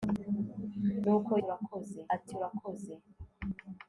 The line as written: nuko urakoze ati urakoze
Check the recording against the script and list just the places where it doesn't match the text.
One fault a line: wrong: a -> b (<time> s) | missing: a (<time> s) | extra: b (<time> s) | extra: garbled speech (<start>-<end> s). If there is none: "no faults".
no faults